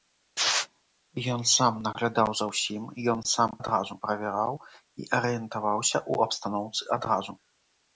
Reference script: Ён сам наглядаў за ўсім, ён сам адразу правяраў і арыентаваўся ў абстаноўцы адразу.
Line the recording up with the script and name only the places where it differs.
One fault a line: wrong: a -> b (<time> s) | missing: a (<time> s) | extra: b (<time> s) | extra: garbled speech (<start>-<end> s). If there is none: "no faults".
no faults